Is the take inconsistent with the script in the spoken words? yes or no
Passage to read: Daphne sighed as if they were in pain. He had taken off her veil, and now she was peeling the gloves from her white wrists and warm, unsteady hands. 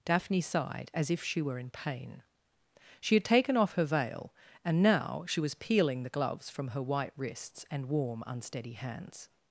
yes